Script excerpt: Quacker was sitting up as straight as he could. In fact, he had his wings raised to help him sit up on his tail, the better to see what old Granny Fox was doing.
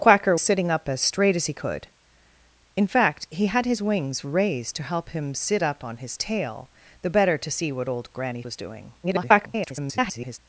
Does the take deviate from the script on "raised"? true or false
false